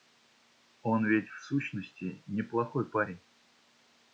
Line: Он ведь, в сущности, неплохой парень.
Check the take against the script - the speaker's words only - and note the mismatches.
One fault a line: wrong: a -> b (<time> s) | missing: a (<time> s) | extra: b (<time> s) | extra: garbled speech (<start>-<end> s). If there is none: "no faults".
no faults